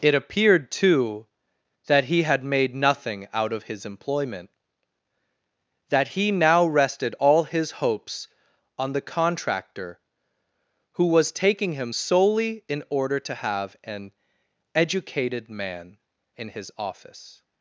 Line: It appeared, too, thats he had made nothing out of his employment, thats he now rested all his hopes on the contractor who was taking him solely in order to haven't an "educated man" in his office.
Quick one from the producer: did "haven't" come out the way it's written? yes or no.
no